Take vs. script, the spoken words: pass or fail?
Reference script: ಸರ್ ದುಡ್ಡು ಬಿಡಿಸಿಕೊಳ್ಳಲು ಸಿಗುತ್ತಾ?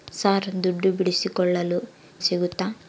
pass